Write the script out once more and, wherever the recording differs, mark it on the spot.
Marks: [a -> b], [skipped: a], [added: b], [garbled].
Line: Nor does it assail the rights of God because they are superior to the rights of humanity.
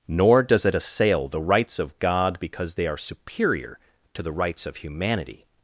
Nor does it assail the rights of God because they are superior to the rights of humanity.